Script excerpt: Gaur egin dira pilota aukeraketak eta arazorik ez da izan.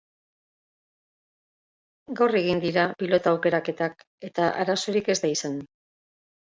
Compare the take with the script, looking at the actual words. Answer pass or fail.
pass